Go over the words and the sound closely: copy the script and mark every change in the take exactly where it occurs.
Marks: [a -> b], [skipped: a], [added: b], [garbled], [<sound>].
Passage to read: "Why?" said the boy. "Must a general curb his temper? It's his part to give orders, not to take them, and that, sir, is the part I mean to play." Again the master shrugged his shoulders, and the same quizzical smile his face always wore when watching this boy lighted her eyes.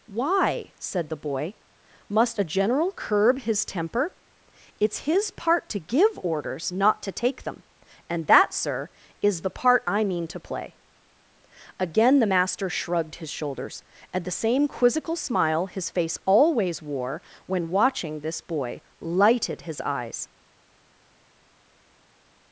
"Why?" said the boy. "Must a general curb his temper? It's his part to give orders, not to take them, and that, sir, is the part I mean to play." Again the master shrugged his shoulders, and the same quizzical smile his face always wore when watching this boy lighted [her -> his] eyes.